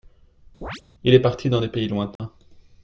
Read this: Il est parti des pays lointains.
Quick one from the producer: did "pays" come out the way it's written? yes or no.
yes